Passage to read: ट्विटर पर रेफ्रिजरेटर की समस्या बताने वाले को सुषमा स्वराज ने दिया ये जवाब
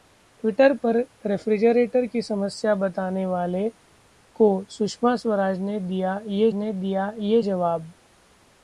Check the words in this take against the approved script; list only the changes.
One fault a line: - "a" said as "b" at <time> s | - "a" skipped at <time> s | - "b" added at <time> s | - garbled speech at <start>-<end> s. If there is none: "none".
- "ने दिया ये" added at 6.5 s